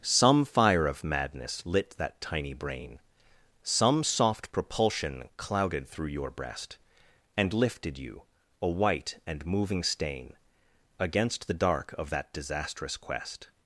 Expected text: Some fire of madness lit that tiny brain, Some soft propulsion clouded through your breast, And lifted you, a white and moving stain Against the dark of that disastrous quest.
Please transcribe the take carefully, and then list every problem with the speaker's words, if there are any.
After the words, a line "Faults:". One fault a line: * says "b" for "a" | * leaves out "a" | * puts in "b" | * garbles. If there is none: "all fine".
Some fire of madness lit that tiny brain, Some soft propulsion clouded through your breast, And lifted you, a white and moving stain Against the dark of that disastrous quest.
Faults:
all fine